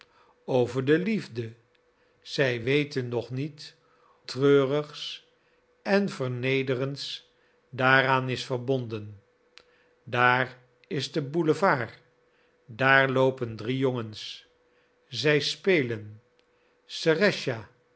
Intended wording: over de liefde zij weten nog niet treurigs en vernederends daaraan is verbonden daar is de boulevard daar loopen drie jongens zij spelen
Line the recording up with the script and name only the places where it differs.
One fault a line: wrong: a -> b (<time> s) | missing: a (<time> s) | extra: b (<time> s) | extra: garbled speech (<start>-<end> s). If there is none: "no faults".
no faults